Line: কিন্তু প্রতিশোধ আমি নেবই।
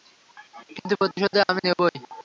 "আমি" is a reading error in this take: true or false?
false